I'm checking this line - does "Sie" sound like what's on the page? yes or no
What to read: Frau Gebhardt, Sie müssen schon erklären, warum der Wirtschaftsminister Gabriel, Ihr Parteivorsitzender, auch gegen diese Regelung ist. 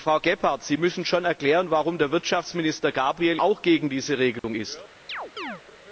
yes